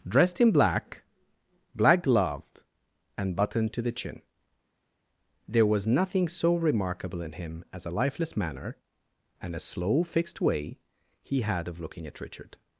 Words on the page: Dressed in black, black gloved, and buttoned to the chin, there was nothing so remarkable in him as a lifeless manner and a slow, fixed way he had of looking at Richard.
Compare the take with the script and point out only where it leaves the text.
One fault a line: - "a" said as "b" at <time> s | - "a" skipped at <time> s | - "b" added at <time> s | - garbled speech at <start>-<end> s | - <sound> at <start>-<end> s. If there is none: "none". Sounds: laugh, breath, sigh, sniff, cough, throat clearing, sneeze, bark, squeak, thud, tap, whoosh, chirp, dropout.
none